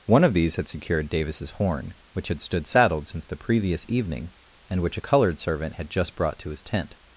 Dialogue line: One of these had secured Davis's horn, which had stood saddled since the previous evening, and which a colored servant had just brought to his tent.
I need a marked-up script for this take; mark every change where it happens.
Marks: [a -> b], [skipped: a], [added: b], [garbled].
One of these had secured Davis's horn, which had stood saddled since the previous evening, and which a colored servant had just brought to his tent.